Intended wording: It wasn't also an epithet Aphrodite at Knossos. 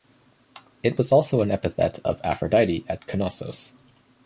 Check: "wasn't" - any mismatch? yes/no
yes